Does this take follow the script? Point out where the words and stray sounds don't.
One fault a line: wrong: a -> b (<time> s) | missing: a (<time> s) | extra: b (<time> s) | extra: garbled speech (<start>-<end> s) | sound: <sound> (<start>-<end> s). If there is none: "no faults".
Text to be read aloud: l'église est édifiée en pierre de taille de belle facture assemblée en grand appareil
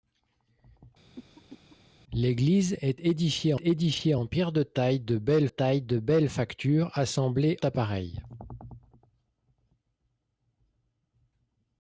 sound: cough (1.2-1.8 s)
extra: édifiée (3.6 s)
extra: taille de belle (5.5 s)
missing: en grand (7.6 s)